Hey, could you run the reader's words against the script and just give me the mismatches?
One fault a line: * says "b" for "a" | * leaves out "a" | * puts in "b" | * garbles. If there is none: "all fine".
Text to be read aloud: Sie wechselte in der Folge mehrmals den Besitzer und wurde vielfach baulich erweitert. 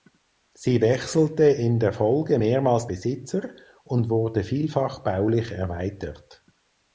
* leaves out "den"